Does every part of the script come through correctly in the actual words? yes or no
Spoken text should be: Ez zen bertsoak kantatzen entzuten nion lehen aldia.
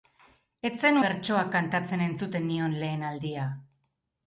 yes